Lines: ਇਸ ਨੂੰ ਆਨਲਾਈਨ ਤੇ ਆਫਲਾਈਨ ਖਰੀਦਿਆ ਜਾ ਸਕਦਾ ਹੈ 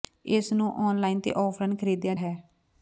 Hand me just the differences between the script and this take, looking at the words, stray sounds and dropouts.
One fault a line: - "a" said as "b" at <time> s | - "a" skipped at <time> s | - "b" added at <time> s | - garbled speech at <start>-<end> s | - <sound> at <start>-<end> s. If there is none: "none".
- "ਜਾ ਸਕਦਾ" skipped at 2.1 s